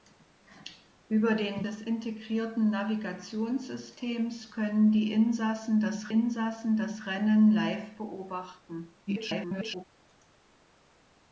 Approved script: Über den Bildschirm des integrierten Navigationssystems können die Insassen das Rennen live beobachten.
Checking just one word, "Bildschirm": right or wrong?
wrong